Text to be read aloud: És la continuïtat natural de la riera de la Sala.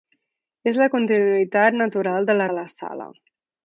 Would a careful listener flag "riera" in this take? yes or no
yes